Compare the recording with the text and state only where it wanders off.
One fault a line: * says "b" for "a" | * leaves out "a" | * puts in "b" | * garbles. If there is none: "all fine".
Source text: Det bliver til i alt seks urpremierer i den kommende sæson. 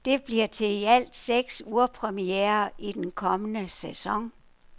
all fine